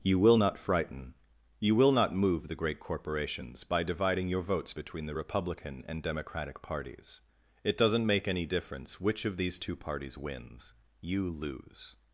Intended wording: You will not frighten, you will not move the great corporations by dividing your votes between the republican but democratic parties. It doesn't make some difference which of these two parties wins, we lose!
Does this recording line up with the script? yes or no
no